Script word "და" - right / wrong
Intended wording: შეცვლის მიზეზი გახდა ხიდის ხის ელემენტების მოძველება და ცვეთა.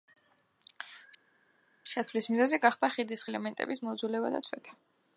right